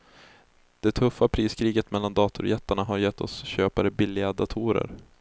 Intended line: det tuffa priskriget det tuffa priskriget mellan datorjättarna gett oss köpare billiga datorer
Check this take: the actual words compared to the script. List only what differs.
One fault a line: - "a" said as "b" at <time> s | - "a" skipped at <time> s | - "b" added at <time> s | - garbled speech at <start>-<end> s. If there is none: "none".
- "det tuffa priskriget" skipped at 1.9 s
- "har" added at 2.8 s